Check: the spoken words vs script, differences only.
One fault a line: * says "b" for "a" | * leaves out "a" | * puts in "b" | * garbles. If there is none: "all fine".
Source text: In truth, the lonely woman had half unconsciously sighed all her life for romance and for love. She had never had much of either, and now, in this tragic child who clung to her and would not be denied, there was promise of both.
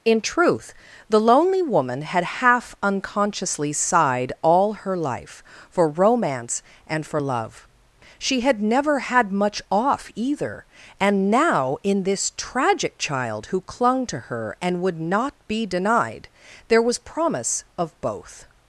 * says "off" for "of"